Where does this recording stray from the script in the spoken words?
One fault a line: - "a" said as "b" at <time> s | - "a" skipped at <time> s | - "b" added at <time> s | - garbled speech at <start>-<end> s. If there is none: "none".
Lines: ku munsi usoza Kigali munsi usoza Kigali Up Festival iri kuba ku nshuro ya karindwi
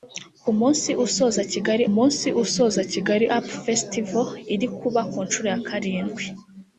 none